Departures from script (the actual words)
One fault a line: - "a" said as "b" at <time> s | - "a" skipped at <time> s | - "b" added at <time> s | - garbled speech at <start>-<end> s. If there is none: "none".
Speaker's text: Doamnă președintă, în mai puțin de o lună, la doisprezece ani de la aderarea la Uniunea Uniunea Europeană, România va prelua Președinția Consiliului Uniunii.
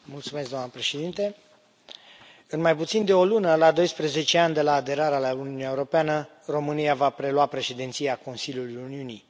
- "Uniunea" skipped at 5.7 s